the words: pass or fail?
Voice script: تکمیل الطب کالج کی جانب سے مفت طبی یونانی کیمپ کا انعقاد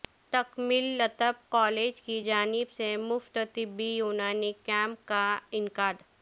pass